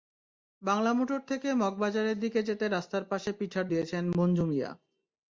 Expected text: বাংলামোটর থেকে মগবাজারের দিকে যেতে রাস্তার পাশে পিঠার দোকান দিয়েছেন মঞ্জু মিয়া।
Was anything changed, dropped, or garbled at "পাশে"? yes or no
no